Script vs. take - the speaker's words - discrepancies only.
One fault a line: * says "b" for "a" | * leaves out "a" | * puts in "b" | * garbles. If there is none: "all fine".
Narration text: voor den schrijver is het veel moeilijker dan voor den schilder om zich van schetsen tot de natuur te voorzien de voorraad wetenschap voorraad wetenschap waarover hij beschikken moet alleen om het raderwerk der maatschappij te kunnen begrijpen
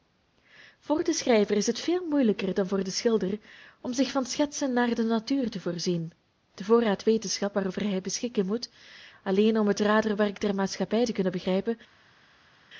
* says "naar" for "tot"
* leaves out "voorraad wetenschap"